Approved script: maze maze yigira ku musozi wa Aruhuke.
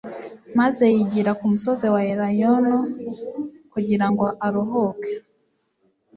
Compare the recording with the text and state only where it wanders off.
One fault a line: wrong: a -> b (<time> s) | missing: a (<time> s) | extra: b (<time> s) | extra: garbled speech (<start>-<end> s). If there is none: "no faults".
missing: maze (0.8 s)
extra: Elayono kugira ngo (2.1 s)